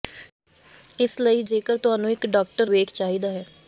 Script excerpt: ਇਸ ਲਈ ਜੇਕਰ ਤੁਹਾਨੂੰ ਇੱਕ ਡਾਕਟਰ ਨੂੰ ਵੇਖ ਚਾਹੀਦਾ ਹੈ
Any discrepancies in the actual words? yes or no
yes